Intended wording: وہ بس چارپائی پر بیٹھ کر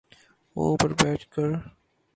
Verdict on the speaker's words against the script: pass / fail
fail